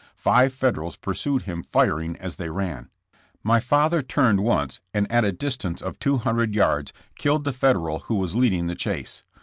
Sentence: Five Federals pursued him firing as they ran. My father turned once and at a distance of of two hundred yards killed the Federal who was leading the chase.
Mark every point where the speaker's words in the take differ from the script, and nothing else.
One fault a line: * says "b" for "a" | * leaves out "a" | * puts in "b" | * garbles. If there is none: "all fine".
* leaves out "of"